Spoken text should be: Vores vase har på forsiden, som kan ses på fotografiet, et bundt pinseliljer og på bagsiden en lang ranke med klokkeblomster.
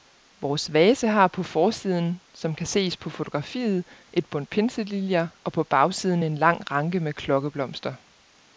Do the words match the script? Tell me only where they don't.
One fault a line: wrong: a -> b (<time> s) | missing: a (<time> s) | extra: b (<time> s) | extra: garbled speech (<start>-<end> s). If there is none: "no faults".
no faults